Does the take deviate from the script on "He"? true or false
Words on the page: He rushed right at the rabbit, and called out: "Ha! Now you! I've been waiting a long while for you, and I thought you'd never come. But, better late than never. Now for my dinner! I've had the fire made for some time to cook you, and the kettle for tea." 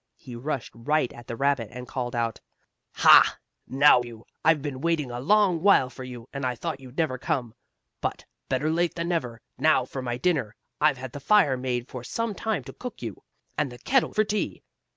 false